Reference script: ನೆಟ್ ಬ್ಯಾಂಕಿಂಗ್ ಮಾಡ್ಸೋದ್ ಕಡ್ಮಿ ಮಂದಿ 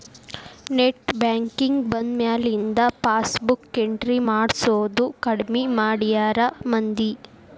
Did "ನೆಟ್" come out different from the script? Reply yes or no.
no